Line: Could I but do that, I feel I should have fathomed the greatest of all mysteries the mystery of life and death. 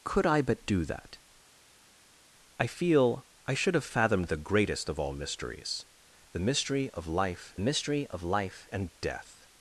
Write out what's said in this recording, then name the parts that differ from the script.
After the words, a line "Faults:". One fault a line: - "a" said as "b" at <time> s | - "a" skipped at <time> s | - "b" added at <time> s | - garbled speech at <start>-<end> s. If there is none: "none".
Could I but do that, I feel I should have fathomed the greatest of all mysteries the mystery of life mystery of life and death.
Faults:
- "mystery of life" added at 7.6 s